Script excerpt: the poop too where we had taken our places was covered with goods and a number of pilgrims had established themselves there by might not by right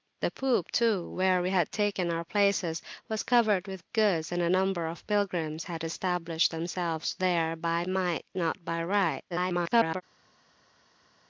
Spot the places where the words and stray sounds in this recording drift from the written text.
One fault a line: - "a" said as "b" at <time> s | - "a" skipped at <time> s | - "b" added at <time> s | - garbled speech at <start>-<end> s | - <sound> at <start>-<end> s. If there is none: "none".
- garbled speech at 9.3-10.0 s